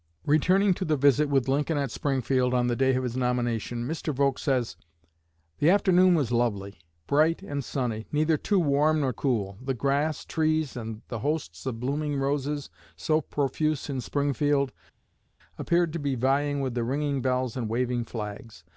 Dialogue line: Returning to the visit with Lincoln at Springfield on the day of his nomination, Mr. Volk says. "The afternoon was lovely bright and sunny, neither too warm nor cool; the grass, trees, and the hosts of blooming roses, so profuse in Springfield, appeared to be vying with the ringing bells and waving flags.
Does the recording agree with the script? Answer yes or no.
yes